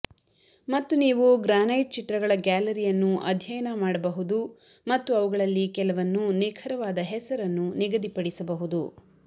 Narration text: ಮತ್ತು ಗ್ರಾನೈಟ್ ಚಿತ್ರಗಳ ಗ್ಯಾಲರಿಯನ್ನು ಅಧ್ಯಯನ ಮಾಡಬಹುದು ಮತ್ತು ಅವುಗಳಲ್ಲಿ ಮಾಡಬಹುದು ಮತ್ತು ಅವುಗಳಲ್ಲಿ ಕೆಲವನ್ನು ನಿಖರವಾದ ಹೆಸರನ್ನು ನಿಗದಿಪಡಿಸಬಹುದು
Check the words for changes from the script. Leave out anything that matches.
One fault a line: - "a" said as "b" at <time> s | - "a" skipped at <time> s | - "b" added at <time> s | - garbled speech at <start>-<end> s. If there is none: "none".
- "ನೀವು" added at 1.0 s
- "ಮಾಡಬಹುದು ಮತ್ತು ಅವುಗಳಲ್ಲಿ" skipped at 5.7 s